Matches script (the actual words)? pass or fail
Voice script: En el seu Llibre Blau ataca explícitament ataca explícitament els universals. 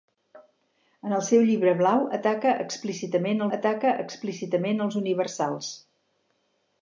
pass